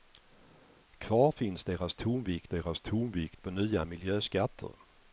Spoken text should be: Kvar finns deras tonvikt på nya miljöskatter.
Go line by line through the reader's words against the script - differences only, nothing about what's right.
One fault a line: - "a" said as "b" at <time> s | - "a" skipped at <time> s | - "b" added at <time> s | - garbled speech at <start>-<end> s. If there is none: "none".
- "deras tonvikt" added at 2.5 s